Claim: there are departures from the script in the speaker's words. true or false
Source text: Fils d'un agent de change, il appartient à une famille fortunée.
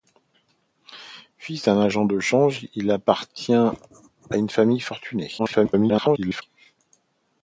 true